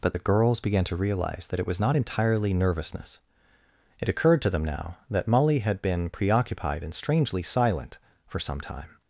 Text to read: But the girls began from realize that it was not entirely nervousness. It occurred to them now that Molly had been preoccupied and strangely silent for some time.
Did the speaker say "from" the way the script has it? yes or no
no